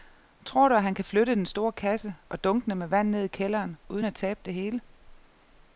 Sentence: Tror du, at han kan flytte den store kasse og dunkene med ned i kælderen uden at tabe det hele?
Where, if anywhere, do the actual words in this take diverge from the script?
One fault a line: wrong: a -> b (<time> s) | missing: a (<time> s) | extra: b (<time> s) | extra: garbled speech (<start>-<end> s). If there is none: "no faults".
extra: vand (2.9 s)